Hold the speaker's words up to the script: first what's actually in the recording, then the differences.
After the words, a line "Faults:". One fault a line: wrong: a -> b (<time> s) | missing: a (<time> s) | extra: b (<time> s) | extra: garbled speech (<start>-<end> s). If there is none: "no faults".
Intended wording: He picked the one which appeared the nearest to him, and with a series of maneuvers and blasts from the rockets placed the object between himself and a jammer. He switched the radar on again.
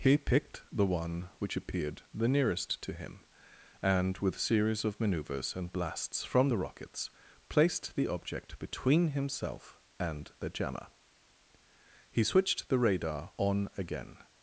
He picked the one which appeared the nearest to him, and with a series of maneuvers and blasts from the rockets placed the object between himself and the jammer. He switched the radar on again.
Faults:
wrong: a -> the (10.4 s)